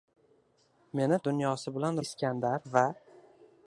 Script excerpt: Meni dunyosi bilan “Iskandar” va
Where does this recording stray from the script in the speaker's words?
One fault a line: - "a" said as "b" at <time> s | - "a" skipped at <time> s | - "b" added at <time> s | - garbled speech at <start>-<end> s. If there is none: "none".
none